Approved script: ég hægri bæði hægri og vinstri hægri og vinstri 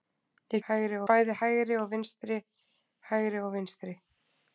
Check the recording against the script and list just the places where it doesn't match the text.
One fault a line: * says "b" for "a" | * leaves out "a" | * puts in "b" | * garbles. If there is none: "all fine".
all fine